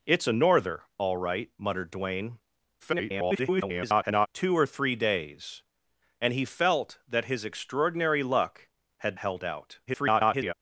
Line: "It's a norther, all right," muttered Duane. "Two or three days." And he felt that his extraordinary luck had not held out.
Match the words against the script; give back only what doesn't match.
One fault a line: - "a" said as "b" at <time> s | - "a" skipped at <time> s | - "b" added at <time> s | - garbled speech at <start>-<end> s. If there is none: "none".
- garbled speech at 2.8-4.3 s
- "not" skipped at 9.2 s
- garbled speech at 9.9-10.5 s